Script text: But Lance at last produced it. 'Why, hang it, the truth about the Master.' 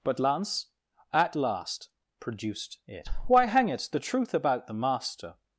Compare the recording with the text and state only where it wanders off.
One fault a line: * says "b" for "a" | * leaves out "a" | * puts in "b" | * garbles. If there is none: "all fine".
all fine